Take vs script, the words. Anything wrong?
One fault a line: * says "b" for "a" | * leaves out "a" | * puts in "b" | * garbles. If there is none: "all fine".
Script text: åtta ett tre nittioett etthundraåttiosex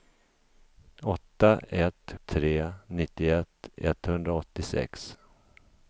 all fine